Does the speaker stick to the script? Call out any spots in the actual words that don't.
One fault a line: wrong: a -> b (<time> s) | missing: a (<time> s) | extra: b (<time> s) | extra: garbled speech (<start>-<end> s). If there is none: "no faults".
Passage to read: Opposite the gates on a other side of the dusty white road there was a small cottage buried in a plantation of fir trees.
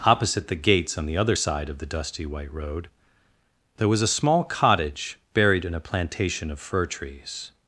wrong: a -> the (1.1 s)